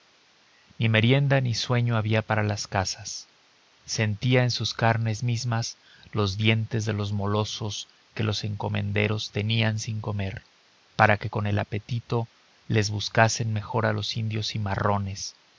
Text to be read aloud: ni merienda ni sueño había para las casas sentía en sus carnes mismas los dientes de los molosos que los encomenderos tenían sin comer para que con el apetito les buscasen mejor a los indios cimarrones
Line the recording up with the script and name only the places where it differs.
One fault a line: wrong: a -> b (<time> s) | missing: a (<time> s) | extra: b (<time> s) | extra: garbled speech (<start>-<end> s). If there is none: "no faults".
no faults